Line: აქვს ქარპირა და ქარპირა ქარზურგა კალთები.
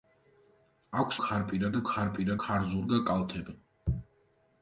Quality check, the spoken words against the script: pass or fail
pass